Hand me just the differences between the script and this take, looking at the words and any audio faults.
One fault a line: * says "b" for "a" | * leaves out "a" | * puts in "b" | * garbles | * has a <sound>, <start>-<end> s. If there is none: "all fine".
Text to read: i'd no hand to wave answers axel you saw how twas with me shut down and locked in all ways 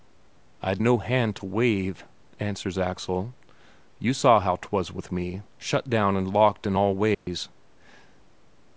* has a dropout, 7.1-7.3 s